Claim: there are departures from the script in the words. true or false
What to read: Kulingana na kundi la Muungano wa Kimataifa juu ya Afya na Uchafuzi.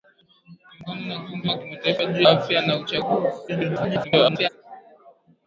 true